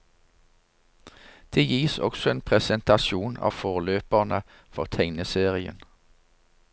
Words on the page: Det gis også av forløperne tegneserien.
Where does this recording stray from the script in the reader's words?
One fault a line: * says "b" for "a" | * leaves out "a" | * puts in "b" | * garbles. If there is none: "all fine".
* puts in "en presentasjon"
* puts in "for"